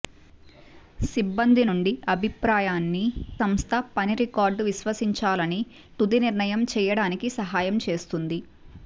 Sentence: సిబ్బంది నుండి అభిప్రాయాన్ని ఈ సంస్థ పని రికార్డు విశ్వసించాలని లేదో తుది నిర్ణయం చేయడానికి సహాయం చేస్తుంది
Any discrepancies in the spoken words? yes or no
yes